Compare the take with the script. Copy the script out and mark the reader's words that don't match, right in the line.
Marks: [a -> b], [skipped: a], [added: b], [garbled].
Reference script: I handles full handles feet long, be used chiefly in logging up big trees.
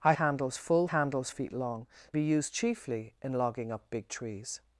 I handles full handles feet long, be used chiefly in logging up big trees.